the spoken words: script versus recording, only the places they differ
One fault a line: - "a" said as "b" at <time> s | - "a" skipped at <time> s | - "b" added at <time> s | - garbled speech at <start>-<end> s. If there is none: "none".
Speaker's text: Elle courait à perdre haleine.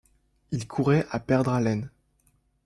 - "Elle" said as "Il" at 0.5 s